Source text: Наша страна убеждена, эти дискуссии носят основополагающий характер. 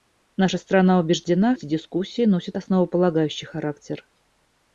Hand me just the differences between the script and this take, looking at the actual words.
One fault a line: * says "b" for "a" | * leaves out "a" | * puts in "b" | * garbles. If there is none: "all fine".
all fine